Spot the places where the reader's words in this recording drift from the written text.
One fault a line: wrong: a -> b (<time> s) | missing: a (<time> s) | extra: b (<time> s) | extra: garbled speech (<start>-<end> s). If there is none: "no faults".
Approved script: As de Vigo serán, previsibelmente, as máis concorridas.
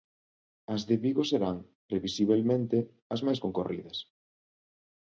no faults